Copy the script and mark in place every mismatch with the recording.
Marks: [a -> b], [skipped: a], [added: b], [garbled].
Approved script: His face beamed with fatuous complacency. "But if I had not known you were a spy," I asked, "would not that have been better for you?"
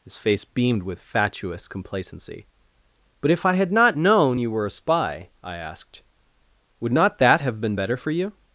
His face beamed with fatuous complacency. "But if I had not known you were a spy," I asked, "would not that have been better for you?"